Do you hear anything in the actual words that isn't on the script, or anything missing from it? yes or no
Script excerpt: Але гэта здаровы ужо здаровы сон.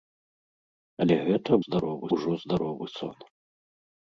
no